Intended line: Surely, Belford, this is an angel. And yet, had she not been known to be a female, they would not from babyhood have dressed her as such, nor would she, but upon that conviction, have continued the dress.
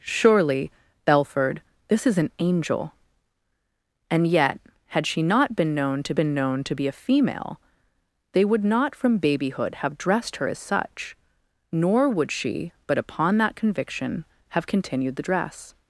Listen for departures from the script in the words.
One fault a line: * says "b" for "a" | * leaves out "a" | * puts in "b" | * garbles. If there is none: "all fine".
* puts in "been known to"